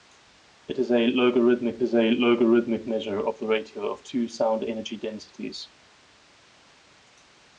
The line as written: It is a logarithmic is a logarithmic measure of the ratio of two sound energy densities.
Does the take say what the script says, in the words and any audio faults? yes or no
yes